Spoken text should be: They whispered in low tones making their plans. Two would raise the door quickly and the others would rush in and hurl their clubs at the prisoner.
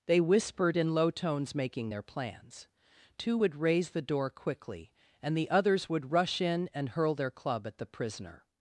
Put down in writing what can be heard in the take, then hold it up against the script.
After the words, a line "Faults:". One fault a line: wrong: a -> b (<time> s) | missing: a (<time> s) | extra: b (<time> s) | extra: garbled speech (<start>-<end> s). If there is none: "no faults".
They whispered in low tones making their plans. Two would raise the door quickly and the others would rush in and hurl their club at the prisoner.
Faults:
wrong: clubs -> club (7.3 s)